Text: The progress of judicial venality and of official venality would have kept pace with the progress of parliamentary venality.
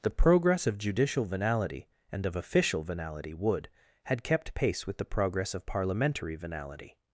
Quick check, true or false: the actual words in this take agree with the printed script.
false